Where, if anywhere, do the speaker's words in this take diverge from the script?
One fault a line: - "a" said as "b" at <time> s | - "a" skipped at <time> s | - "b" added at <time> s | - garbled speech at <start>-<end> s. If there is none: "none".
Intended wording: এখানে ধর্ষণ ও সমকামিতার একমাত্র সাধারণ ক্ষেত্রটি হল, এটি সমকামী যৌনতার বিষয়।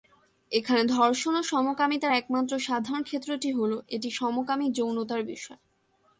none